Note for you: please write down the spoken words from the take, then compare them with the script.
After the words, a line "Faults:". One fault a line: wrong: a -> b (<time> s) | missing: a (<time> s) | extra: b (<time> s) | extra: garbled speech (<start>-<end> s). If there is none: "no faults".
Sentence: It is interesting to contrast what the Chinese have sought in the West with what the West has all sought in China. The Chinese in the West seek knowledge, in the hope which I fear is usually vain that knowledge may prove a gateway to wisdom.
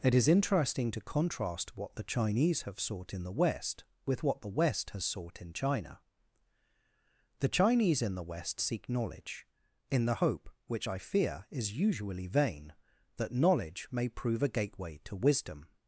It is interesting to contrast what the Chinese have sought in the West with what the West has sought in China. The Chinese in the West seek knowledge, in the hope which I fear is usually vain that knowledge may prove a gateway to wisdom.
Faults:
missing: all (5.0 s)